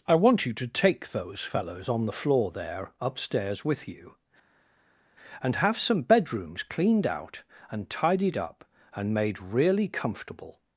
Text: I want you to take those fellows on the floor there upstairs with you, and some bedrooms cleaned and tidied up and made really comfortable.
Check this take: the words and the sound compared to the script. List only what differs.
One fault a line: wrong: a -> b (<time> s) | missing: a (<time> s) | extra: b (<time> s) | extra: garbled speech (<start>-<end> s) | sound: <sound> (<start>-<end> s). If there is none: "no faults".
extra: have (5.6 s)
extra: out (7.1 s)